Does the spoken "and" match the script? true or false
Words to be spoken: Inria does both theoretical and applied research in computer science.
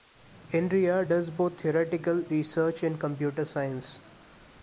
false